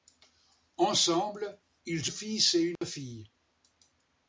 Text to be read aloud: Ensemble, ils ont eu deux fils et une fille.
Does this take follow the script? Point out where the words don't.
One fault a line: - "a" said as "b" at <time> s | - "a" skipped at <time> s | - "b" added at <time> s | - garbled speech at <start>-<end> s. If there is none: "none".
- "ont eu deux" skipped at 2.1 s